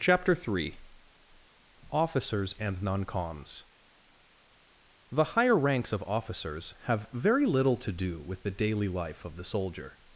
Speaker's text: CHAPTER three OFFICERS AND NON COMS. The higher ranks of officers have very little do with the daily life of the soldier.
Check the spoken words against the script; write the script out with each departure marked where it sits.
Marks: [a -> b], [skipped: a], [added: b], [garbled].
CHAPTER three OFFICERS AND NON COMS. The higher ranks of officers have very little [added: to] do with the daily life of the soldier.